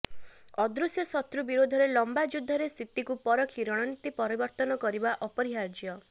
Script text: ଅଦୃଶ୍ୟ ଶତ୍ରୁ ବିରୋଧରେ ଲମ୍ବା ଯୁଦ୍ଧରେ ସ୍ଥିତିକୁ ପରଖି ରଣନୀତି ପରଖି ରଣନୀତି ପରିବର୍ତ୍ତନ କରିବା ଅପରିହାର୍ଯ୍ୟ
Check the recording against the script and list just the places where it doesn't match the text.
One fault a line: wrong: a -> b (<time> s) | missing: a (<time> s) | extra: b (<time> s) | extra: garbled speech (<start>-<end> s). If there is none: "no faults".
missing: ପରଖି ରଣନୀତି (4.1 s)